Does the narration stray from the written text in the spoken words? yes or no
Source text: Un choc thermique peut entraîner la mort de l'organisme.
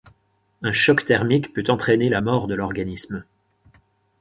no